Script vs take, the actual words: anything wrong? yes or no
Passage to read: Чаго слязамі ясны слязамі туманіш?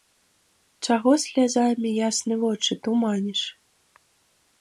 yes